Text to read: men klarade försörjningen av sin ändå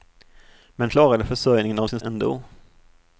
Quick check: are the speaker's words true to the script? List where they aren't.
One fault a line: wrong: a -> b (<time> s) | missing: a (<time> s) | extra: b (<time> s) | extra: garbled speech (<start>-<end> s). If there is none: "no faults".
no faults